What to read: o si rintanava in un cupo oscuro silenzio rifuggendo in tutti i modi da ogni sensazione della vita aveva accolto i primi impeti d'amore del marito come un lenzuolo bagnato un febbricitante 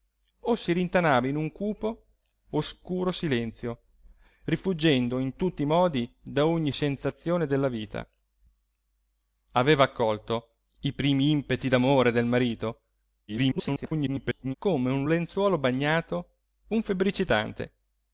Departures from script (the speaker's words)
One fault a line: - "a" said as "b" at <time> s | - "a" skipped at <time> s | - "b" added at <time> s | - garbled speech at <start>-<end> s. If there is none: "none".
- garbled speech at 13.3-14.5 s